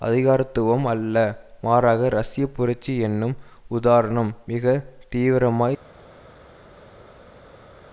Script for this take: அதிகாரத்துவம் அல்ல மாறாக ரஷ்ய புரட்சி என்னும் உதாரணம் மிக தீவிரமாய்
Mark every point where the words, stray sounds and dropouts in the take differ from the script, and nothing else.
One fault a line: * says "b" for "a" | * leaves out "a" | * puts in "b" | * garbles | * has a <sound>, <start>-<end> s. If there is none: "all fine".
all fine